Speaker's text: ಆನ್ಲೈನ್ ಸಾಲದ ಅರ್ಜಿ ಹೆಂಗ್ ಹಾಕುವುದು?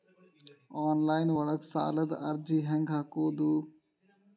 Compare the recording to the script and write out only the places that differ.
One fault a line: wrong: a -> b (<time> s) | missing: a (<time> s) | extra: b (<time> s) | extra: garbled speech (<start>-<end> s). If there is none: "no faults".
extra: ಒಳಗ (1.3 s)